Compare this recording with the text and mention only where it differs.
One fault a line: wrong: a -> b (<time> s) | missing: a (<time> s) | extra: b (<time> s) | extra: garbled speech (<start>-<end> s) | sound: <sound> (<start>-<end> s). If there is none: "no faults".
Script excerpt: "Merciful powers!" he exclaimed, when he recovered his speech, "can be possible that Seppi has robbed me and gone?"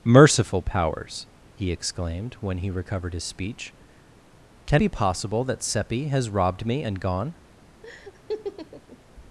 sound: laugh (7.8-9.0 s)